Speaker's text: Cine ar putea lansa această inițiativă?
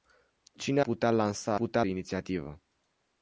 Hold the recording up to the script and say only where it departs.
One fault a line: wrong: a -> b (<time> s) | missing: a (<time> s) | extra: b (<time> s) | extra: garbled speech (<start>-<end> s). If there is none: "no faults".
missing: ar (0.8 s)
wrong: această -> putea (1.5 s)